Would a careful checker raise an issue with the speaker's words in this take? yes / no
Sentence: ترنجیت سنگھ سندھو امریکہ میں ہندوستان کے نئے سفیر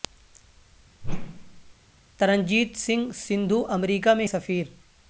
yes